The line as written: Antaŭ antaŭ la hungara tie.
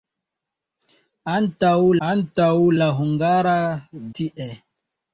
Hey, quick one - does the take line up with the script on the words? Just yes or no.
yes